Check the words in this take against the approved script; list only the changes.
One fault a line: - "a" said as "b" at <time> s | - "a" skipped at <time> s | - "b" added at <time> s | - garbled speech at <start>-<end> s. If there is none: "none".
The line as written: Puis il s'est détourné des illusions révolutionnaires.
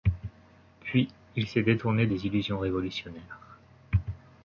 none